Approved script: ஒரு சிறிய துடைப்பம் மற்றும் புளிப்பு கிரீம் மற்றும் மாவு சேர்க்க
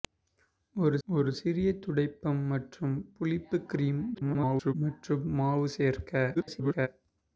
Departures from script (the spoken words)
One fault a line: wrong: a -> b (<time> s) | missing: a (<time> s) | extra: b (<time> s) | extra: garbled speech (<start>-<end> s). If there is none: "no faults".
extra: ஒரு (1.1 s)
extra: garbled speech (4.1-4.7 s)
extra: garbled speech (6.3-6.9 s)